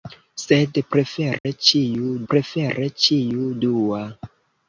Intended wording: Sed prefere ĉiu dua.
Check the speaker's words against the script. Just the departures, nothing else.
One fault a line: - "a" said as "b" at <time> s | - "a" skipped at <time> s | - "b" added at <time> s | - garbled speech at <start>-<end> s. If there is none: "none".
- "prefere ĉiu" added at 2.3 s